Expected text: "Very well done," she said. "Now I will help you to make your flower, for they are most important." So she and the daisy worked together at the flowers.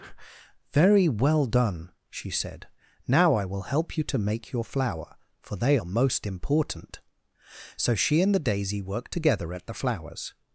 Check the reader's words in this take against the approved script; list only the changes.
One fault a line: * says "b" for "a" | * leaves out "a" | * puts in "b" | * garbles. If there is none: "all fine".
all fine